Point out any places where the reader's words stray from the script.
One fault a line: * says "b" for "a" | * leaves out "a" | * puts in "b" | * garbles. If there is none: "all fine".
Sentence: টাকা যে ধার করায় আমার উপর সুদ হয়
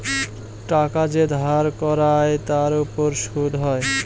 * says "তার" for "আমার"